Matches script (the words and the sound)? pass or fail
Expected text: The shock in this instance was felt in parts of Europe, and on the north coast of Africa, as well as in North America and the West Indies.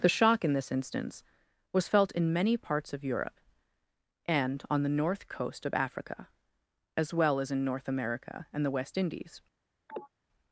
fail